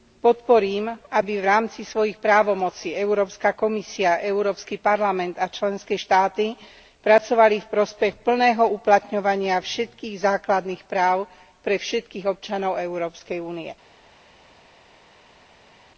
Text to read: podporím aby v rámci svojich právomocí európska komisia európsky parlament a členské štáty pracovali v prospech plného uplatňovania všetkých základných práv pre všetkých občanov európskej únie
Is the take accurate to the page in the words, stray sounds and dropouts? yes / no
yes